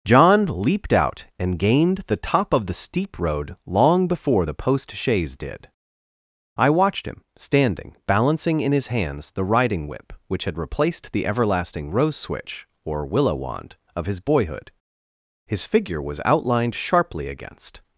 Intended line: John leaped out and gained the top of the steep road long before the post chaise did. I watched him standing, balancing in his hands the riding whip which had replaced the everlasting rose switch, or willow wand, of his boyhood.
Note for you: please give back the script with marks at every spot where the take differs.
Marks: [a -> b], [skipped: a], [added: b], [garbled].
John leaped out and gained the top of the steep road long before the post chaise did. I watched him standing, balancing in his hands the riding whip which had replaced the everlasting rose switch, or willow wand, of his boyhood. [added: His figure was outlined sharply against]